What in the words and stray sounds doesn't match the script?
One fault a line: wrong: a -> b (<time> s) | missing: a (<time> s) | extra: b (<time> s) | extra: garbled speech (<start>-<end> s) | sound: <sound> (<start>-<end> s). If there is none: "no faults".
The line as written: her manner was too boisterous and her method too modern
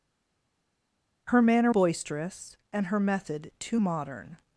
missing: was too (1.7 s)